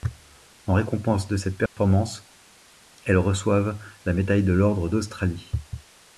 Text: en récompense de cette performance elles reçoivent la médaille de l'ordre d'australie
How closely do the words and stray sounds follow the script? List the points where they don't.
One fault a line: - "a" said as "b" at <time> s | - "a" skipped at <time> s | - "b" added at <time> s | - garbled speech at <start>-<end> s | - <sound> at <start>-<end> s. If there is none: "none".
- dropout at 1.7-1.8 s